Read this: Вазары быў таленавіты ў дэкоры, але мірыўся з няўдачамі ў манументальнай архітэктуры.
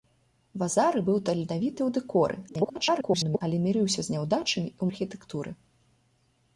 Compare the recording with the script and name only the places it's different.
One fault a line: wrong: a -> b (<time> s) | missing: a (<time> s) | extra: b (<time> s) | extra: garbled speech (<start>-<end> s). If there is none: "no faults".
extra: garbled speech (2.5-3.4 s)
missing: манументальнай (4.8 s)